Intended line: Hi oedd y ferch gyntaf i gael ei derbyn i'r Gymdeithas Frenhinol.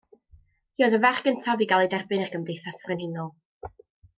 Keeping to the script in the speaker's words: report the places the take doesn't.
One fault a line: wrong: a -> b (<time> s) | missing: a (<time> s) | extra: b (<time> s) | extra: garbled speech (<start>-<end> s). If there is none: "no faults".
no faults